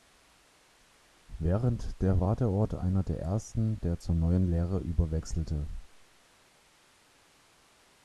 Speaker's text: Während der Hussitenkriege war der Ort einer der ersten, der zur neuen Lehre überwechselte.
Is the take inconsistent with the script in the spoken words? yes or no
yes